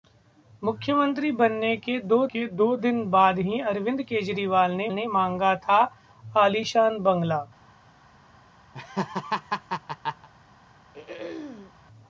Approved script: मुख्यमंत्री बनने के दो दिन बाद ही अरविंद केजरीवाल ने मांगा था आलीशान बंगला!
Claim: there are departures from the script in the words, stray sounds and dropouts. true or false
true